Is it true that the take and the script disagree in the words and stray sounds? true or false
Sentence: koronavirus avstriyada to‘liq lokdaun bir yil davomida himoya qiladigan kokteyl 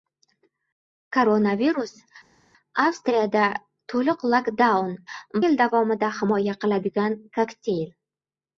true